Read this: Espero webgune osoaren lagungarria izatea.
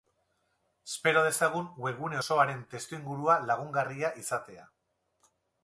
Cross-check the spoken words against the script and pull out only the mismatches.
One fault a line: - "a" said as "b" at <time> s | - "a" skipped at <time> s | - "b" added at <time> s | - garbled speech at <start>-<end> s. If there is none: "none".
- "dezagun" added at 1.3 s
- "testuingurua" added at 2.7 s